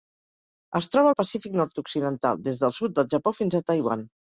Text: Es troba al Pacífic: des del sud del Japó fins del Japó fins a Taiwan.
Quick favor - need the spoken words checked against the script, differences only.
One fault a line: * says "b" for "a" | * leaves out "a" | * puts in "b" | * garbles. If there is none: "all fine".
* puts in "nord occidental"
* leaves out "del Japó fins"